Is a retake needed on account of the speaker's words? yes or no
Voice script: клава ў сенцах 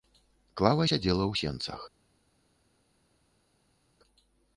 yes